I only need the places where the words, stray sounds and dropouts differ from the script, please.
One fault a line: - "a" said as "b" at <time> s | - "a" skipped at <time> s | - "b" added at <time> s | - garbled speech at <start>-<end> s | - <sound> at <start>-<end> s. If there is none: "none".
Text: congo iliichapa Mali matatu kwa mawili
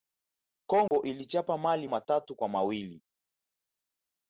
- dropout at 0.9-0.9 s